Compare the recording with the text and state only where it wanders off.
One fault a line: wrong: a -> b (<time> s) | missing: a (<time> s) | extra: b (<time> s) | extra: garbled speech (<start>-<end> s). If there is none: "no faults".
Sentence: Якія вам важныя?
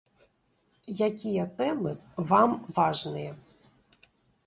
extra: тэмы (1.6 s)